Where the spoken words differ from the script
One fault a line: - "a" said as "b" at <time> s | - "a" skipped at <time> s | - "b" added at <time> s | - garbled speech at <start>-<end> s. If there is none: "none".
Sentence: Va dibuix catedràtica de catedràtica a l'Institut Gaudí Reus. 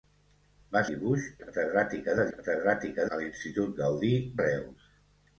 none